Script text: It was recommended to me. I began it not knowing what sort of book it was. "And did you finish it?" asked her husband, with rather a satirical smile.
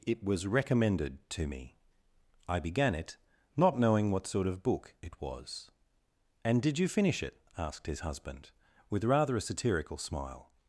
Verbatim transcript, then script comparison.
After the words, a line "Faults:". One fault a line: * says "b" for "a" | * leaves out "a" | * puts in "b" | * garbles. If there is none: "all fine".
It was recommended to me. I began it not knowing what sort of book it was. "And did you finish it?" asked his husband, with rather a satirical smile.
Faults:
* says "his" for "her"